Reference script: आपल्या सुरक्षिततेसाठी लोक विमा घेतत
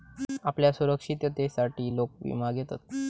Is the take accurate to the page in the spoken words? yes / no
yes